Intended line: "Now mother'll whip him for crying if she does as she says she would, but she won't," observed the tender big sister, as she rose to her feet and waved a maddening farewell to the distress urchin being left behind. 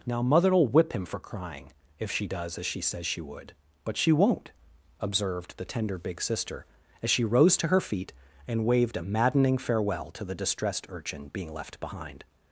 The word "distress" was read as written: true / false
false